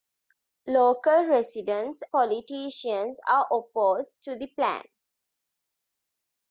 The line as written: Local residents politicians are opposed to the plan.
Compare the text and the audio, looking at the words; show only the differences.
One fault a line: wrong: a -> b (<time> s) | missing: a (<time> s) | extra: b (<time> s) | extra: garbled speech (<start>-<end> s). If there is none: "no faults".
no faults